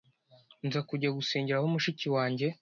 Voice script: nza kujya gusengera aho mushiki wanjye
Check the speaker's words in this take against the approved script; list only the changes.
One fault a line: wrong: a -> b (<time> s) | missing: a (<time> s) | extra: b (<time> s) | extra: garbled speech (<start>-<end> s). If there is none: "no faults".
no faults